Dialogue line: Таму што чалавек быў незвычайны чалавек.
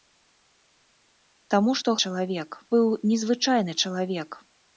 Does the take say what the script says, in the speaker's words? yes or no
yes